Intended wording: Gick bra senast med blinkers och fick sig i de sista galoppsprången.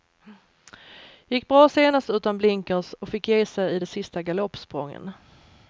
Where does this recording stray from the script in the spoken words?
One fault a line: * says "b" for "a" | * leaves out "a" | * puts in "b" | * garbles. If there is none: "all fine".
* says "utan" for "med"
* puts in "ge"